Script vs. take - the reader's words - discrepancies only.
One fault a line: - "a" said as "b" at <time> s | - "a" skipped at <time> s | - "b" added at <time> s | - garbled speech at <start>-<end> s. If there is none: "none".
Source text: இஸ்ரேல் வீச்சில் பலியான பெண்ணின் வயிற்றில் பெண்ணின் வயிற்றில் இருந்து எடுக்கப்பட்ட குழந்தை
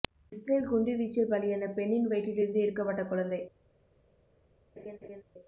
- "குண்டு" added at 0.7 s
- "பெண்ணின் வயிற்றில்" skipped at 2.4 s